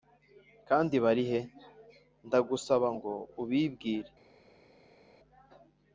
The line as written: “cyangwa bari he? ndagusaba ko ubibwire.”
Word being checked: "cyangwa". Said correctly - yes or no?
no